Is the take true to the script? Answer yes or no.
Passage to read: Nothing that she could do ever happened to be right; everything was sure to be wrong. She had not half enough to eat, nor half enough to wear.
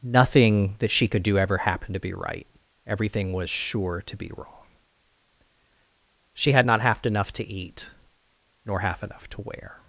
yes